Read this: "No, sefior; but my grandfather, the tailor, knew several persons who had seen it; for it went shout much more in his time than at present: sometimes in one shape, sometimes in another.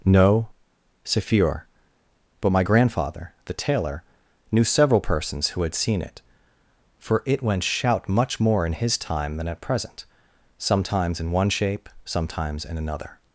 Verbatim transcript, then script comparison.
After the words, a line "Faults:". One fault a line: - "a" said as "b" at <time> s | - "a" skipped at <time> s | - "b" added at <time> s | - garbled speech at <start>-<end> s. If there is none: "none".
"No, sefior; but my grandfather, the tailor, knew several persons who had seen it; for it went shout much more in his time than at present: sometimes in one shape, sometimes in another.
Faults:
none